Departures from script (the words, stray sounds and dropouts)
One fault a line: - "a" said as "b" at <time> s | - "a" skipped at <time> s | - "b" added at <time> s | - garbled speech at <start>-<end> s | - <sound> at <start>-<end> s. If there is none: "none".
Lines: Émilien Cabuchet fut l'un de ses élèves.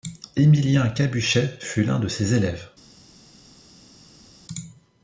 none